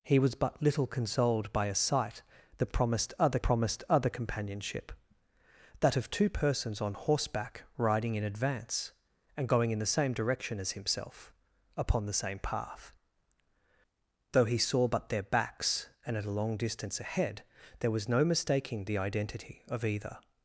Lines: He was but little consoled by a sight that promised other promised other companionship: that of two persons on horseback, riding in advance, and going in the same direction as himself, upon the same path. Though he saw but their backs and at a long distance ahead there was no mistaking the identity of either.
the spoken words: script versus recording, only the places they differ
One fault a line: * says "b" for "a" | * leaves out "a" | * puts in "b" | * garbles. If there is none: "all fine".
all fine